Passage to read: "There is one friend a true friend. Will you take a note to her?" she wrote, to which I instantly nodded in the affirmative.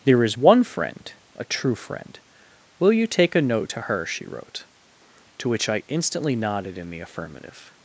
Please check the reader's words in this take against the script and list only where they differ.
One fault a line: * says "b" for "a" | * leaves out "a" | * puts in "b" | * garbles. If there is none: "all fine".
all fine